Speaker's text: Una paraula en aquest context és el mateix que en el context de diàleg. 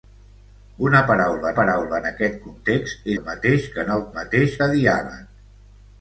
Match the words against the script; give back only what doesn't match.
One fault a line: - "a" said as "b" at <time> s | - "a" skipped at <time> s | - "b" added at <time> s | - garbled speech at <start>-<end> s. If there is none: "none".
- "paraula" added at 1.6 s
- "és" skipped at 3.1 s
- "context" said as "mateix" at 4.2 s